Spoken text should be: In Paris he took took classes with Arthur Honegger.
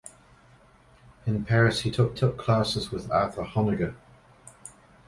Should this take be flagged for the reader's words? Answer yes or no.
no